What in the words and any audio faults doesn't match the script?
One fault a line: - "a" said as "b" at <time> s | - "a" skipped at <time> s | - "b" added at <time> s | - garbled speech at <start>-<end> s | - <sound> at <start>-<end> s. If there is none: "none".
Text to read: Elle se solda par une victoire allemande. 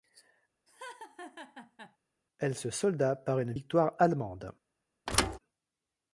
- laugh at 0.7-2.0 s
- thud at 5.1-5.4 s